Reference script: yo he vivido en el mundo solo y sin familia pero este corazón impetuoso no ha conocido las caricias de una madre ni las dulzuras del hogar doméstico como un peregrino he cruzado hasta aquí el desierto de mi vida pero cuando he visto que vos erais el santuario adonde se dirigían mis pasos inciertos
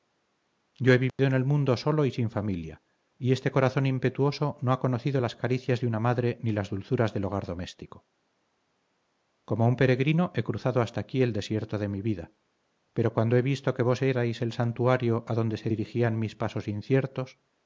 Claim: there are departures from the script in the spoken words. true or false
true